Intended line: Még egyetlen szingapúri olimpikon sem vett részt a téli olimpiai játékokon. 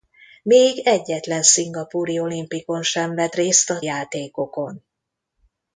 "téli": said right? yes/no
no